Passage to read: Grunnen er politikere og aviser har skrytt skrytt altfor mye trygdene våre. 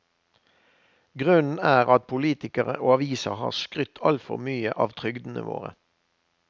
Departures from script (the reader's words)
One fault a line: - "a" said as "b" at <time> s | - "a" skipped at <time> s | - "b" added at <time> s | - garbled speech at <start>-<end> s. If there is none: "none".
- "at" added at 1.9 s
- "skrytt" skipped at 4.0 s
- "av" added at 4.8 s